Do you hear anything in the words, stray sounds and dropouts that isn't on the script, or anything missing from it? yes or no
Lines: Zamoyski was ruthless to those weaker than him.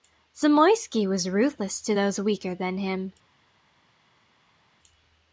no